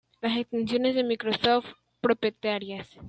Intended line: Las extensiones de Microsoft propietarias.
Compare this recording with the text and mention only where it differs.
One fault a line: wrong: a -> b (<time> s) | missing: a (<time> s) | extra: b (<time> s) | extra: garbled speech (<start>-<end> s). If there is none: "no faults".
no faults